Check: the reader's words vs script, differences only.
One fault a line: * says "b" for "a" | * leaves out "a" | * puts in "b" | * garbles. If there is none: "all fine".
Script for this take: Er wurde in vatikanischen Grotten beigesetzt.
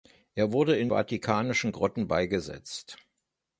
all fine